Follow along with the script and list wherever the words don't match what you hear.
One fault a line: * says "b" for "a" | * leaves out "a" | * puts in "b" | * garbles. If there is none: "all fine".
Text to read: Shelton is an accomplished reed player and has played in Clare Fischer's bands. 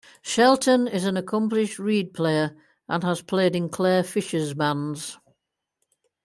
all fine